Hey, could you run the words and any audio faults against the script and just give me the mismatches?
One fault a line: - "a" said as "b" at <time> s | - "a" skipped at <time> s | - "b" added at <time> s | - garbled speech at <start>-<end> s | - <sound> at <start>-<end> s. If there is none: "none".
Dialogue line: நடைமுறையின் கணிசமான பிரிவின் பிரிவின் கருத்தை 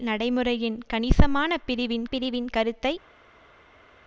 none